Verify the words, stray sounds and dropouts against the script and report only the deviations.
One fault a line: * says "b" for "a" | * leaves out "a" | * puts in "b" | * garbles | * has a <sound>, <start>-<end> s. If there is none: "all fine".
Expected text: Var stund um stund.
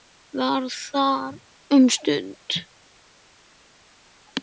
* says "þar" for "stund"